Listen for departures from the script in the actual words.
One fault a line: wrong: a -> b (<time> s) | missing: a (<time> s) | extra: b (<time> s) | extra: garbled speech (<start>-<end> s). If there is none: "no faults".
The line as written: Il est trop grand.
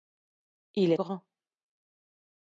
missing: trop (1.0 s)